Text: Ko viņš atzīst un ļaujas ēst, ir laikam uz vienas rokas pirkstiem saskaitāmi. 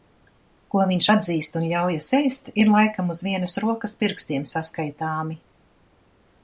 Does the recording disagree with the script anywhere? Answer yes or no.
no